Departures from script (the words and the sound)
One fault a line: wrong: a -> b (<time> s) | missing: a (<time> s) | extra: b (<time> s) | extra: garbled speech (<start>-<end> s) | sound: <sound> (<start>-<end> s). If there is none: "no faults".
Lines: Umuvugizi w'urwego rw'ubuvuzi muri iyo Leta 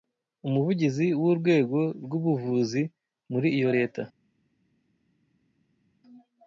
no faults